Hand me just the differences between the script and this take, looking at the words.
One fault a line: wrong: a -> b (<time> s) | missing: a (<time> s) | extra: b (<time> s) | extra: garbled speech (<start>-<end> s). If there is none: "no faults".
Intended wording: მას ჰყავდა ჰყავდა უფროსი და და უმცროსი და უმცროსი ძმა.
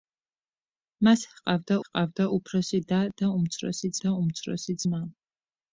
no faults